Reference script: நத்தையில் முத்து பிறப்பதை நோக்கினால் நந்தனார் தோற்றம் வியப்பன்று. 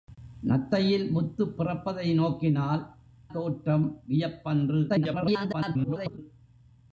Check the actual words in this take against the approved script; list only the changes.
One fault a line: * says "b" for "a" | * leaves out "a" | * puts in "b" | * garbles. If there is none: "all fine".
* leaves out "நந்தனார்"
* garbles